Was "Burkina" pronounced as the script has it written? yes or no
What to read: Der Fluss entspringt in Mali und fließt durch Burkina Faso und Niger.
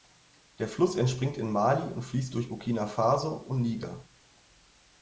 yes